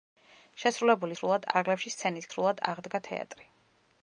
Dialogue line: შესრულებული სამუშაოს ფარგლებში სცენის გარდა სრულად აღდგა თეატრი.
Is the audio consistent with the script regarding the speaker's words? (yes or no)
no